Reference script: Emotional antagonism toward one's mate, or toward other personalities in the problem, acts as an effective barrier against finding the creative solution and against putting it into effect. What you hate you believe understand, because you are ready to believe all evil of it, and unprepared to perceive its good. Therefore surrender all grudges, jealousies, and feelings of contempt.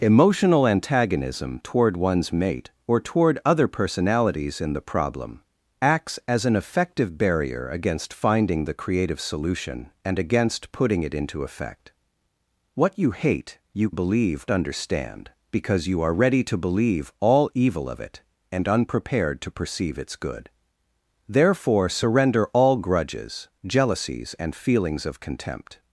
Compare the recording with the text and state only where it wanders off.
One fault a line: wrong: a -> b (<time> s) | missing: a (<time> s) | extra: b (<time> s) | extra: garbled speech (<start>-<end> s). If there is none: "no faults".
no faults